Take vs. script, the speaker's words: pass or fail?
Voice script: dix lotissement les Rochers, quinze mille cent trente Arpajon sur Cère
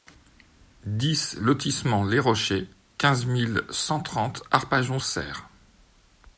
fail